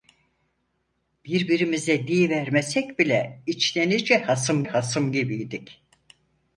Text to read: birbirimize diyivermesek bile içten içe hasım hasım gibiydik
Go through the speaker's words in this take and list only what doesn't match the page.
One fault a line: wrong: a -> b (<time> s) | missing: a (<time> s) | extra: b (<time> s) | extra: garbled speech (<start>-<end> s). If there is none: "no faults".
no faults